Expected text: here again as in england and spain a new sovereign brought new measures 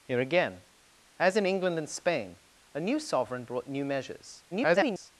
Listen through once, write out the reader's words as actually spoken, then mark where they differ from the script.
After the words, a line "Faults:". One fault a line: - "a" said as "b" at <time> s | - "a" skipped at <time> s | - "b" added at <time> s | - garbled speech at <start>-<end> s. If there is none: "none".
here again as in england and spain a new sovereign brought new measures [garbled]
Faults:
- garbled speech at 4.5-5.1 s